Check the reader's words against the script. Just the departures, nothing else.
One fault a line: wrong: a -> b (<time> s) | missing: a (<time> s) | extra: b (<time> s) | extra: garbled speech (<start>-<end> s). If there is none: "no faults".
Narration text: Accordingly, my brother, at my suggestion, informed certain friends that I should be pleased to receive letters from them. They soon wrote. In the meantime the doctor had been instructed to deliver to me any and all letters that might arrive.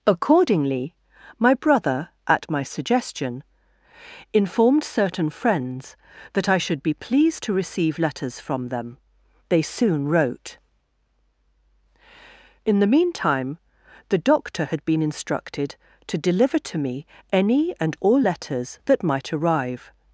no faults